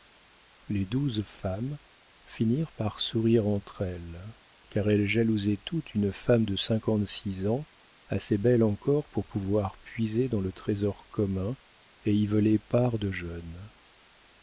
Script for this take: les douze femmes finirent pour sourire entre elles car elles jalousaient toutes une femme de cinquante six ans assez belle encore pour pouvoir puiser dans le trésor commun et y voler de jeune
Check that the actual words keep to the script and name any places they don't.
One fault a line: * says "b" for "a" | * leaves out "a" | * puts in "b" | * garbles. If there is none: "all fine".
* says "par" for "pour"
* puts in "part"